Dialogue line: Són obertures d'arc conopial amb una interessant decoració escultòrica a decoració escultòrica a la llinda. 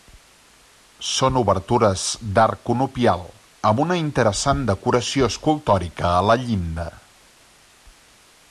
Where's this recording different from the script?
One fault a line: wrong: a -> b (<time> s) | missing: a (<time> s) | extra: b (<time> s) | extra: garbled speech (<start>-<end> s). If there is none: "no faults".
missing: decoració escultòrica a (6.3 s)